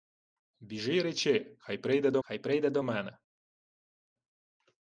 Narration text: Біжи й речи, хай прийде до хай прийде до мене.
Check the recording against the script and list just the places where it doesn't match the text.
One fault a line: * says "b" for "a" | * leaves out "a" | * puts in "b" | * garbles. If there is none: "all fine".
all fine